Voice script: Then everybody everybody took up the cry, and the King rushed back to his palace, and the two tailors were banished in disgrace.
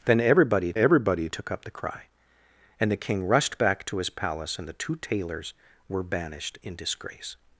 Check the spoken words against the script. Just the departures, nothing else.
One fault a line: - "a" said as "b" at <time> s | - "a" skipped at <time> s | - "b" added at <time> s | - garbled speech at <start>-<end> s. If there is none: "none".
none